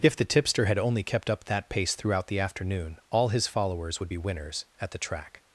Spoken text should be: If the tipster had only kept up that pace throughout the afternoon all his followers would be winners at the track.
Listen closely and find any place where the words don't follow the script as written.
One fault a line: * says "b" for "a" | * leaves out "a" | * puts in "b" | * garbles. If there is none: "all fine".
all fine